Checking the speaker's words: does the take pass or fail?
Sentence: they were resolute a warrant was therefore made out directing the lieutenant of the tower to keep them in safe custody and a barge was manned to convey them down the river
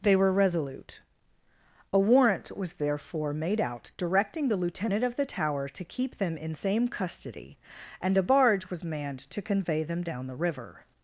fail